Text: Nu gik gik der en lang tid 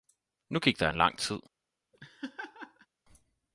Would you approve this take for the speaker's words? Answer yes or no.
no